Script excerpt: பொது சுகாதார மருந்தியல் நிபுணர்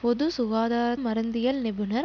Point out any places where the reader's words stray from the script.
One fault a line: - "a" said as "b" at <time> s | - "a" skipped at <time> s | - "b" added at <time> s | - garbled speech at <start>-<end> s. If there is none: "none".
none